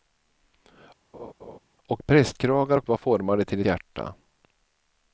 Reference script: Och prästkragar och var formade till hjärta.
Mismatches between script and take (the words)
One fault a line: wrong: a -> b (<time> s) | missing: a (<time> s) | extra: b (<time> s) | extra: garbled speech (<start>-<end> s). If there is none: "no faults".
no faults